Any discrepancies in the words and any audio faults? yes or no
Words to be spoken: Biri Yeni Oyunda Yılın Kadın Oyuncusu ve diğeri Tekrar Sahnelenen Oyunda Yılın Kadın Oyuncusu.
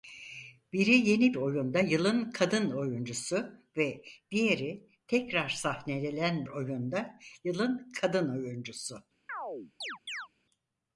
yes